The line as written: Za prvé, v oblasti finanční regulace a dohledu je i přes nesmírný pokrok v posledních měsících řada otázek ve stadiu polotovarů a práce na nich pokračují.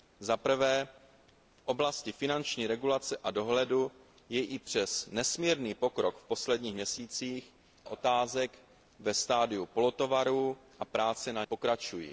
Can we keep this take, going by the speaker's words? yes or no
no